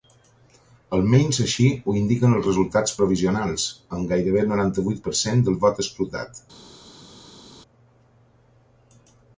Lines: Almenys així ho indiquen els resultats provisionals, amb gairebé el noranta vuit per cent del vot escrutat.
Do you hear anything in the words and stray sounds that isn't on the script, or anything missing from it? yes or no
no